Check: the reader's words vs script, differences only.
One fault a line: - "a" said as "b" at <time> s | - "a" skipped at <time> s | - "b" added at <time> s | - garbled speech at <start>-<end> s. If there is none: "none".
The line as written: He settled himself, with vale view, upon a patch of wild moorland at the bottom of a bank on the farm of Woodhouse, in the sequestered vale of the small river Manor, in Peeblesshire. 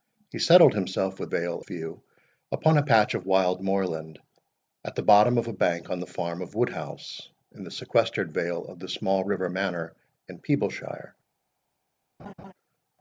none